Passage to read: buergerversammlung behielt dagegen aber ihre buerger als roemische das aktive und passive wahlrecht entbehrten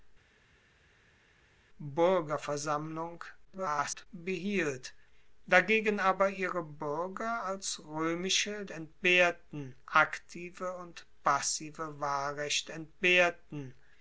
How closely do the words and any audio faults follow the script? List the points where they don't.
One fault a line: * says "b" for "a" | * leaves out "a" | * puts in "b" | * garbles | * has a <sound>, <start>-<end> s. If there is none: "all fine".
* garbles
* says "entbehrten" for "das"